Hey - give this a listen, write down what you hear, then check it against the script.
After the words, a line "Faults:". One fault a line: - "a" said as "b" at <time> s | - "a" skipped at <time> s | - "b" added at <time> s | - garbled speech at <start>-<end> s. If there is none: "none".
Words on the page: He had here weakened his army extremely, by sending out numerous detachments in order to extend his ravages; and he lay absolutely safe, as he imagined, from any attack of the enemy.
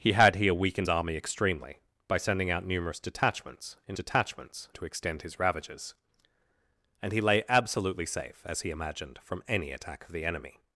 He had here weakened army extremely, by sending out numerous detachments in detachments to extend his ravages; and he lay absolutely safe, as he imagined, from any attack of the enemy.
Faults:
- "his" skipped at 0.9 s
- "order" said as "detachments" at 3.9 s